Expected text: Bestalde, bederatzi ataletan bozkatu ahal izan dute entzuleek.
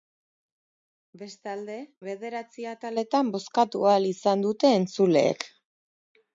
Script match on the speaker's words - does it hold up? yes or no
yes